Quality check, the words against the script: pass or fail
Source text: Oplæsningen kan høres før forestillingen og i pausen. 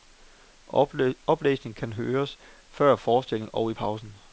pass